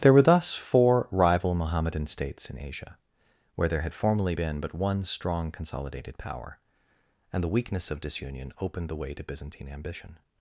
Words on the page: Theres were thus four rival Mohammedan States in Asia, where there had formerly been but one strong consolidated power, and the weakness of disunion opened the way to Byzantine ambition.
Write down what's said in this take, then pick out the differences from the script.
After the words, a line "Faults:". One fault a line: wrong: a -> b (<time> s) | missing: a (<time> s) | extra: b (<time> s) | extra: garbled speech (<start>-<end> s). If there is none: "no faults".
There were thus four rival Mohammedan States in Asia, where there had formerly been but one strong consolidated power, and the weakness of disunion opened the way to Byzantine ambition.
Faults:
wrong: Theres -> There (0.0 s)